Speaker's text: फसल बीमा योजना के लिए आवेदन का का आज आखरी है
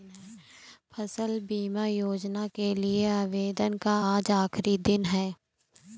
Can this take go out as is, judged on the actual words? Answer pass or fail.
fail